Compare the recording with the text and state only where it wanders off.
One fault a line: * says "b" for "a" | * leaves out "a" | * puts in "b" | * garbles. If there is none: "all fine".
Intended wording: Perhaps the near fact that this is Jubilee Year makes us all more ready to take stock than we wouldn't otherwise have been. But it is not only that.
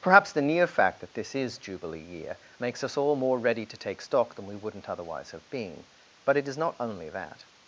all fine